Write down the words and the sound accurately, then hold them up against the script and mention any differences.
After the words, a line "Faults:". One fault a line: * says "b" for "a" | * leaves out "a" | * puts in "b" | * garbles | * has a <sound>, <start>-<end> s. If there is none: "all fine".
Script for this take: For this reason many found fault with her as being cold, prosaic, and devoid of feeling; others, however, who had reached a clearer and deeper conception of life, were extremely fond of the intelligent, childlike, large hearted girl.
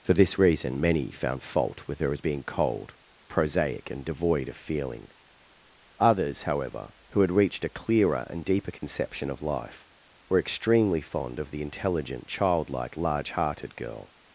For this reason many found fault with her as being cold, prosaic, and devoid of feeling; others, however, who had reached a clearer and deeper conception of life, were extremely fond of the intelligent, childlike, large hearted girl.
Faults:
* has a dropout, 8.8-8.8 s